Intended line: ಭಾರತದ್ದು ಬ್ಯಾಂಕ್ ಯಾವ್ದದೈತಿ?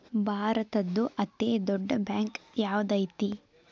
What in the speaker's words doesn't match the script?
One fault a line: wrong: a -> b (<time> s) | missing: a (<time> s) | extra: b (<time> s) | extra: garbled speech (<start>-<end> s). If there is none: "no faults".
extra: ಅತೇ ದೊಡ್ಡ್ (1.2 s)